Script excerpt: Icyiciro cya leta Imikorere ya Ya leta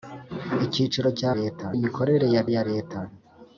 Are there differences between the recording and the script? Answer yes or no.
no